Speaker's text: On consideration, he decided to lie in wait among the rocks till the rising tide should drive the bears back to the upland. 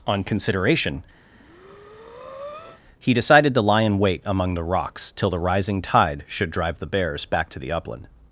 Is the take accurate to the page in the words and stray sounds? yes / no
no